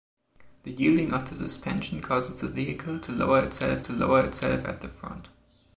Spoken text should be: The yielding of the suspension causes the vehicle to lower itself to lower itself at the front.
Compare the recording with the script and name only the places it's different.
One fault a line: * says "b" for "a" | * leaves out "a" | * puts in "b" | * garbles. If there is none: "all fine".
all fine